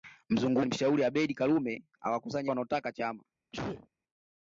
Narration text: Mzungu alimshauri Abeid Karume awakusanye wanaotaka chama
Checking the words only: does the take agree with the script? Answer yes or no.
yes